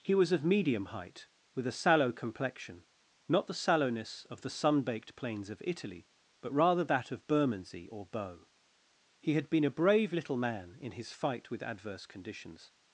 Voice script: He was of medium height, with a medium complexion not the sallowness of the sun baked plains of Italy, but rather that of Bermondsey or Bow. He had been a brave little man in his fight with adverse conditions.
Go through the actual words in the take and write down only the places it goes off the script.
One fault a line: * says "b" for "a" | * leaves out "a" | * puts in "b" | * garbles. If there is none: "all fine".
* says "sallow" for "medium"